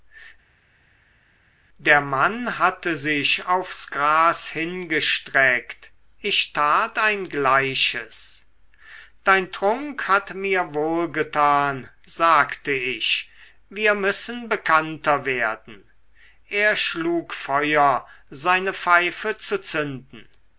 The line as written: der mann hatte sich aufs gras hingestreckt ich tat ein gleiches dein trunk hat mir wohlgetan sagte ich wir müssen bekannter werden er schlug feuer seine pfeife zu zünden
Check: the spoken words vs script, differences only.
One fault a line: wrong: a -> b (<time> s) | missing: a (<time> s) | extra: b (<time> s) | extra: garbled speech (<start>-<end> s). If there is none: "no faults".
no faults